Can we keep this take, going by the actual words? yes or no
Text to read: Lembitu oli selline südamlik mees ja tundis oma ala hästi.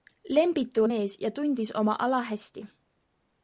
no